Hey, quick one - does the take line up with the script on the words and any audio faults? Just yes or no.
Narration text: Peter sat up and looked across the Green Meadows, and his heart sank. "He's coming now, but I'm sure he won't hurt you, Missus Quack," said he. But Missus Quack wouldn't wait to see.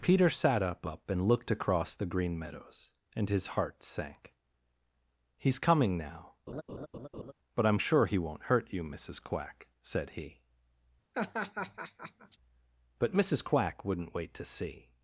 no